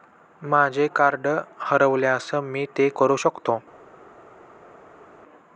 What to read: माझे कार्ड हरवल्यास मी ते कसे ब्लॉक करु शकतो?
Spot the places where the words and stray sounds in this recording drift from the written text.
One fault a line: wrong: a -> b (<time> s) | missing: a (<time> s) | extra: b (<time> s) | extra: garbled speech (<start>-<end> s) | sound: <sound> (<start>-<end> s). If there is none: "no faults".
missing: कसे ब्लॉक (2.9 s)